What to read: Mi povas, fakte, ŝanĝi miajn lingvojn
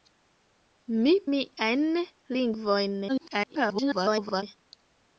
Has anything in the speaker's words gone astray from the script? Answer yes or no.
yes